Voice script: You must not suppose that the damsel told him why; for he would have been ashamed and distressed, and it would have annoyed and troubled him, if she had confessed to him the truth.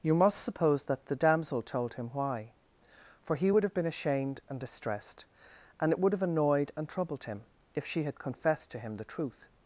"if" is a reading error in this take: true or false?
false